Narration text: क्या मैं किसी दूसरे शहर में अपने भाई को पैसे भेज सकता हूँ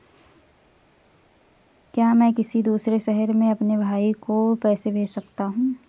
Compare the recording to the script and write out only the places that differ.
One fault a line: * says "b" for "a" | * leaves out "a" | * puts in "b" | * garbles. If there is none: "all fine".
all fine